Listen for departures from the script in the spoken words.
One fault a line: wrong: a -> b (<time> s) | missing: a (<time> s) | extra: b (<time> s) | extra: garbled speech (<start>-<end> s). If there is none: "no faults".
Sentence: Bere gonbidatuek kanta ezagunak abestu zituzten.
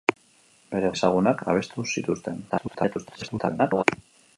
missing: gonbidatuek kanta (0.9 s)
extra: garbled speech (2.5-3.8 s)